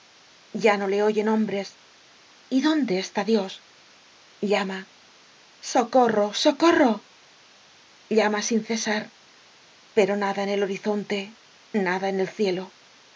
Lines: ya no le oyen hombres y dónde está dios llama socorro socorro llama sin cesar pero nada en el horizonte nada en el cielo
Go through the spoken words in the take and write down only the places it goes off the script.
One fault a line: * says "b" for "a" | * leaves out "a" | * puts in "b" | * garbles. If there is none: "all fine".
all fine